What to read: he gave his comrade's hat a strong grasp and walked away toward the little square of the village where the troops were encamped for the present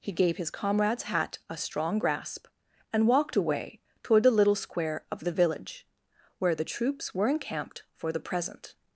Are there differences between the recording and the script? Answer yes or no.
no